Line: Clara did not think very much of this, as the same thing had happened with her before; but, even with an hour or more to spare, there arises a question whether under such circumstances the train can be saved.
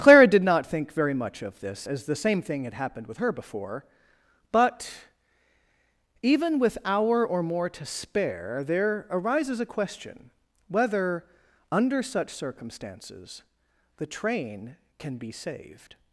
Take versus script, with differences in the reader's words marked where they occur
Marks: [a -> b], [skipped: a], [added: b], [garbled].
Clara did not think very much of this, as the same thing had happened with her before; but, even with [skipped: an] hour or more to spare, there arises a question whether under such circumstances the train can be saved.